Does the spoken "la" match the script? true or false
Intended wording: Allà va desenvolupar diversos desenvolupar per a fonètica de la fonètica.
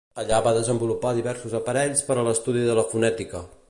true